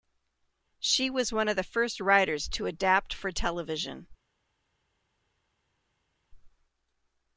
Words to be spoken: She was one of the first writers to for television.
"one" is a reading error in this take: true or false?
false